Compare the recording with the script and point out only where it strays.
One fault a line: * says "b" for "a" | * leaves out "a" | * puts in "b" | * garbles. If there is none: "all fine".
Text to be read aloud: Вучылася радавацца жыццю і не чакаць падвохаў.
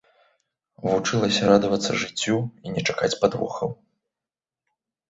all fine